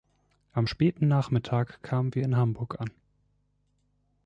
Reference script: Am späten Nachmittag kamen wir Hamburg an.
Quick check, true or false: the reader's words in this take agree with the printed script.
false